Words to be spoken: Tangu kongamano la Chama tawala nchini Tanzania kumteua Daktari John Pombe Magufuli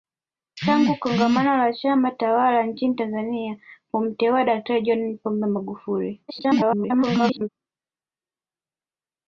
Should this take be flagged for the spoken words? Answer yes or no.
yes